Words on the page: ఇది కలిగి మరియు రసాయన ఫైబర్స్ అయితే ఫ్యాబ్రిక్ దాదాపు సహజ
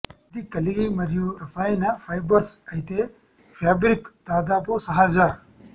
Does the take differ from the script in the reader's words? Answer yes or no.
no